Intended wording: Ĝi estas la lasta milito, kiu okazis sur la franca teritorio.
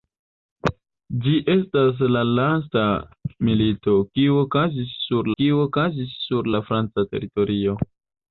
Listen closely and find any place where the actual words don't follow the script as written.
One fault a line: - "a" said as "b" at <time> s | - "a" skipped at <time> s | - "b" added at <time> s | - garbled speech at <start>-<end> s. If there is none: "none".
- "kiu okazis sur" added at 5.4 s